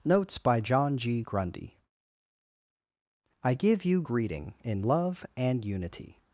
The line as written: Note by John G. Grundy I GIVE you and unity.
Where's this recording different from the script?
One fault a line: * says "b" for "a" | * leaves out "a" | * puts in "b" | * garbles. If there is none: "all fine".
* says "Notes" for "Note"
* puts in "greeting in love"